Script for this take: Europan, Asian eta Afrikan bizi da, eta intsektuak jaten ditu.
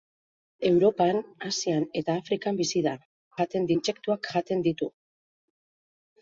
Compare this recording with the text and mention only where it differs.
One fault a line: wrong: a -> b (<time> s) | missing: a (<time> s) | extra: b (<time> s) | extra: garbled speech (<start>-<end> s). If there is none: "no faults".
wrong: eta -> jaten (3.4 s)